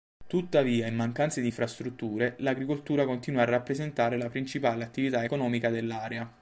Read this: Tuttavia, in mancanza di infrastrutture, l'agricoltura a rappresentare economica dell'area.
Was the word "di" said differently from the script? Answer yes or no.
no